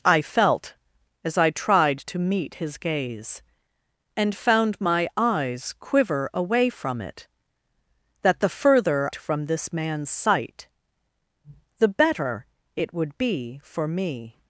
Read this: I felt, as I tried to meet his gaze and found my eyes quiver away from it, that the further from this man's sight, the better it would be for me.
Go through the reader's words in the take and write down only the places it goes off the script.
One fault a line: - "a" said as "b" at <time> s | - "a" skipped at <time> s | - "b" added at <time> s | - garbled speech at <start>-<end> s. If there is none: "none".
none